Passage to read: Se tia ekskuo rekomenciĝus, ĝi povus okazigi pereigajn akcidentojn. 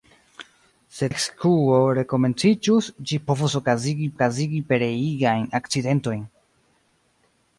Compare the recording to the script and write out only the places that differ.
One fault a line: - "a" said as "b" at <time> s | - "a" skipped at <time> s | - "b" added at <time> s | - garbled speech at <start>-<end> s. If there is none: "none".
- "tia" skipped at 1.1 s
- "okazigi" added at 4.1 s